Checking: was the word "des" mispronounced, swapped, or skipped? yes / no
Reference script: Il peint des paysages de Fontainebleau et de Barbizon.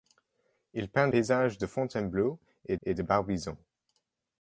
yes